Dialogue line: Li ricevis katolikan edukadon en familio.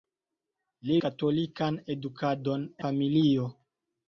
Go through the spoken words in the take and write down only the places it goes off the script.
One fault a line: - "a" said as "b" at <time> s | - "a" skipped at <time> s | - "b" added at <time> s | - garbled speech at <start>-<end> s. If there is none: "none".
- "ricevis" skipped at 0.9 s
- "en" skipped at 2.7 s